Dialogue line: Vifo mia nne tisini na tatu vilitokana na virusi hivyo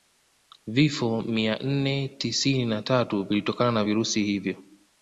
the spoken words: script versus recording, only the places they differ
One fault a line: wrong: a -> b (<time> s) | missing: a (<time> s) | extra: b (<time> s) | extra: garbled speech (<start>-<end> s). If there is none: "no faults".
no faults